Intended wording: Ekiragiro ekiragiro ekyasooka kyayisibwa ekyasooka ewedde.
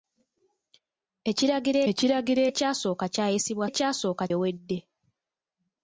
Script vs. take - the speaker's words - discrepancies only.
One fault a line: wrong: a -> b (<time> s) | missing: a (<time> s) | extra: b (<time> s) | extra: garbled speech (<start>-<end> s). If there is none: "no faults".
no faults